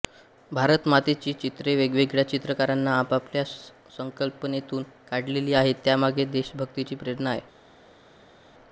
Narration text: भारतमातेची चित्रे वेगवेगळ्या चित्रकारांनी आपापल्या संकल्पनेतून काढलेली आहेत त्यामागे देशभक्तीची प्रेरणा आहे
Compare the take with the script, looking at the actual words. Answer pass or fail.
pass